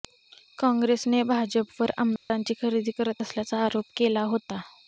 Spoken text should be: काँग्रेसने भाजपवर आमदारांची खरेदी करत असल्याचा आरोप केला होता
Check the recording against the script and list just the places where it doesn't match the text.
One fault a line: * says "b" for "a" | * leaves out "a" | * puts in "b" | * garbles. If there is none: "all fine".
all fine